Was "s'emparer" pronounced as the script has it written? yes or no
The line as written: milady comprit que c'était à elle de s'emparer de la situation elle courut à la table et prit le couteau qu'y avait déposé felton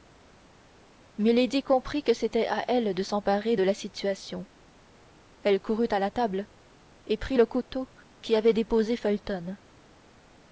yes